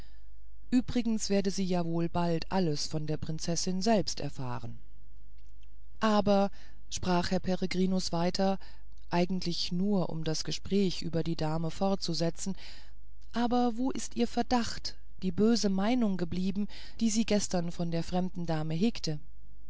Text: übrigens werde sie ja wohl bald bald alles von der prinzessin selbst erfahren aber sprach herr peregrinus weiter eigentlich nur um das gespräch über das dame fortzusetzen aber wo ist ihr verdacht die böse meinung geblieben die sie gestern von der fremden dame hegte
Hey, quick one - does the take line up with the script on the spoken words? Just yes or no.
no